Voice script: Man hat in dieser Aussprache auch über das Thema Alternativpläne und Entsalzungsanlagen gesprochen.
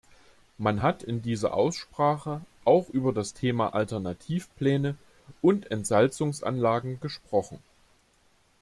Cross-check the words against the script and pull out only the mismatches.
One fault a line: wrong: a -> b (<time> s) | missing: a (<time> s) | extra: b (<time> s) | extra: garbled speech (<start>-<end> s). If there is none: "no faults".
no faults